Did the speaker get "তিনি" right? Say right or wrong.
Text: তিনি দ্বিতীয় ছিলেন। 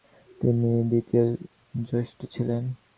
right